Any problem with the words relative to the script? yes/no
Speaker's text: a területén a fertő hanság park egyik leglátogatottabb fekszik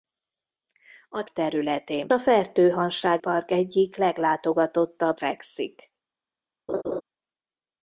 no